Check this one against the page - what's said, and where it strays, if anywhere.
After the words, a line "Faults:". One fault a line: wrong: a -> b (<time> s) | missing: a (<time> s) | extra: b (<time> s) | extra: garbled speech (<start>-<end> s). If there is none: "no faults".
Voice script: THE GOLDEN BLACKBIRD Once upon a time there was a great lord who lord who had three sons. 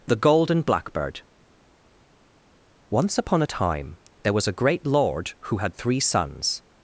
THE GOLDEN BLACKBIRD Once upon a time there was a great lord who had three sons.
Faults:
missing: lord who (5.6 s)